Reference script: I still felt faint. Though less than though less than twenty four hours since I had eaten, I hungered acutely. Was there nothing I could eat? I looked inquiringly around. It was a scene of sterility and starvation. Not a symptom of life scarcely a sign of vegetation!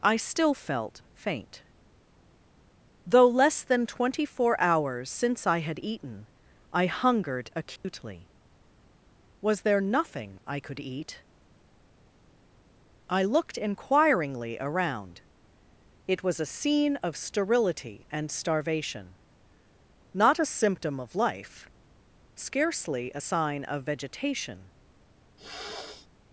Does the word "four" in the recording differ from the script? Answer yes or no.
no